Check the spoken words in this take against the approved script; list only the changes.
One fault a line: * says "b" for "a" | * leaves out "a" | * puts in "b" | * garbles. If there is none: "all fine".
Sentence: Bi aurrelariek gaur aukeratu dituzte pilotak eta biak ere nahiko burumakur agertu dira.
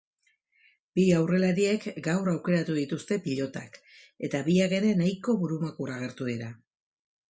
all fine